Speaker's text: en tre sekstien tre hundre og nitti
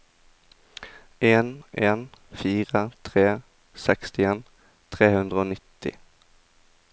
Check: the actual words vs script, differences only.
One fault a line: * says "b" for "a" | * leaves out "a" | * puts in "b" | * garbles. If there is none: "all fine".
* puts in "en fire"